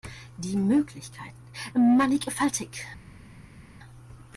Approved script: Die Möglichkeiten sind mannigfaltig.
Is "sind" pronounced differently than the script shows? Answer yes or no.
yes